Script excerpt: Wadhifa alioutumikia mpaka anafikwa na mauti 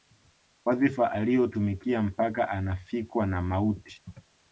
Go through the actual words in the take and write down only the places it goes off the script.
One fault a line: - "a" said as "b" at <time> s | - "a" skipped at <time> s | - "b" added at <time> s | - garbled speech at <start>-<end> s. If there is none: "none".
none